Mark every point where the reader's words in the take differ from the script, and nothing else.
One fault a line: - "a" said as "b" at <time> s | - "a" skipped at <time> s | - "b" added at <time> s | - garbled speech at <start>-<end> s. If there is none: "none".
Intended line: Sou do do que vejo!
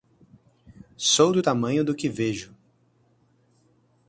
- "tamanho" added at 1.4 s